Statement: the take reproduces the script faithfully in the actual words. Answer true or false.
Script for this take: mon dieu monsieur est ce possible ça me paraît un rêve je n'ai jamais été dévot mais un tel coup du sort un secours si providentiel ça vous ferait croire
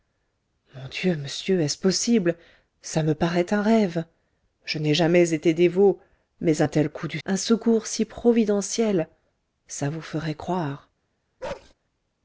false